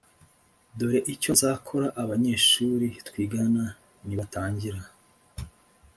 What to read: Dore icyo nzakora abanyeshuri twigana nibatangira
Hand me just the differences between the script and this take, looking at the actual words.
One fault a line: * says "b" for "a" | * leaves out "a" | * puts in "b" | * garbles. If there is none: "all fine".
all fine